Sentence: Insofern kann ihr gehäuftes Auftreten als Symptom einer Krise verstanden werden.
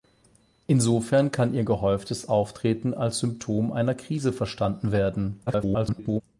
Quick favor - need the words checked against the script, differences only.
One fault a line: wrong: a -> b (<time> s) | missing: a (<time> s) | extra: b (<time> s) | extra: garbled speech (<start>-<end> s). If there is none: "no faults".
extra: garbled speech (5.5-6.2 s)